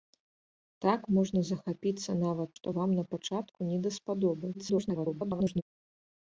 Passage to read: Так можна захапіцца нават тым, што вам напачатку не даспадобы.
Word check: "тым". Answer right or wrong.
wrong